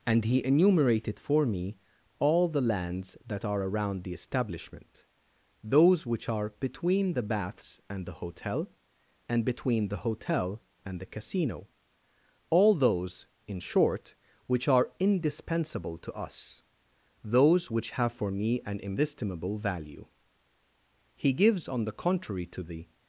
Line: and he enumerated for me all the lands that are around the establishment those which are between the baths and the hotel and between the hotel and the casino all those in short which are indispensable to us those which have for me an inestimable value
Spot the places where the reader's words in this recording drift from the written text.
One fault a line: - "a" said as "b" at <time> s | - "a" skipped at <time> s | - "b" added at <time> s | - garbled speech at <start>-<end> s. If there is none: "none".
- "he gives on the contrary to the" added at 21.2 s